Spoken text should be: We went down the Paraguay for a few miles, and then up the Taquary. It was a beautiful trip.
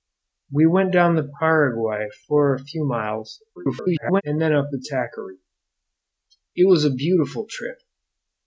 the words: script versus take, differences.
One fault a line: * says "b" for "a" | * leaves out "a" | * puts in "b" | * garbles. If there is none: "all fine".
* garbles